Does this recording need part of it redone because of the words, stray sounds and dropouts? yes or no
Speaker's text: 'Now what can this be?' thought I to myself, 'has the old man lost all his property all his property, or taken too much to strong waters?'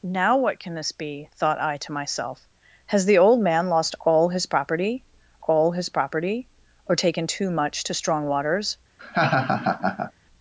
yes